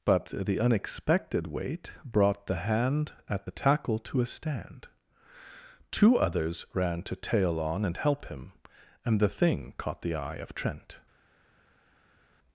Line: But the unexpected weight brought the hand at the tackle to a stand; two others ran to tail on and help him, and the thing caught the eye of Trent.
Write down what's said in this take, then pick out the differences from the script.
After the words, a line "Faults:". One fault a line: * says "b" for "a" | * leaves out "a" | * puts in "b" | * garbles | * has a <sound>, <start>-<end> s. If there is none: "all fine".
But the unexpected weight brought the hand at the tackle to a stand; two others ran to tail on and help him, and the thing caught the eye of Trent.
Faults:
all fine